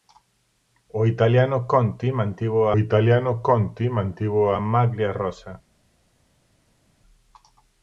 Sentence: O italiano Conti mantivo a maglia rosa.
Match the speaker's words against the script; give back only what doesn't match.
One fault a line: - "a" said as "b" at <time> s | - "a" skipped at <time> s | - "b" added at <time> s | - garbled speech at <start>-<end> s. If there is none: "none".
- "italiano Conti mantivo" added at 2.8 s